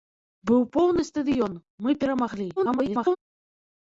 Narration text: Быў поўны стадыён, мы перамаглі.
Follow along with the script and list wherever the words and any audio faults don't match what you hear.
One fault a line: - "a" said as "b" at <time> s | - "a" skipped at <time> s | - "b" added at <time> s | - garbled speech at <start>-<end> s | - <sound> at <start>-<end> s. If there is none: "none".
- garbled speech at 2.6-3.2 s